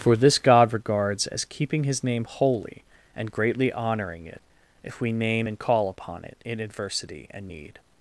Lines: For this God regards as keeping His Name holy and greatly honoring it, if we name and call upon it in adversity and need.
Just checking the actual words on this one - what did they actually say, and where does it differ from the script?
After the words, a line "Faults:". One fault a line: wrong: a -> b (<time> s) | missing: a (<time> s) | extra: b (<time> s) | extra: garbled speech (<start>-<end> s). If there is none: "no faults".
For this God regards as keeping His Name holy and greatly honoring it, if we name and call upon it in adversity and need.
Faults:
no faults